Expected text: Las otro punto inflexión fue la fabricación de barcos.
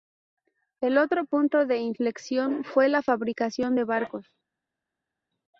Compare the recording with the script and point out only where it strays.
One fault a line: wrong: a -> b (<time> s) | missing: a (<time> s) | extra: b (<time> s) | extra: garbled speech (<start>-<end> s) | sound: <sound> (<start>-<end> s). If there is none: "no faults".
wrong: Las -> El (0.8 s)
extra: de (1.7 s)